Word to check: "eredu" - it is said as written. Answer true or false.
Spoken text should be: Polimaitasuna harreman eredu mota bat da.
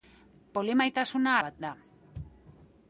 false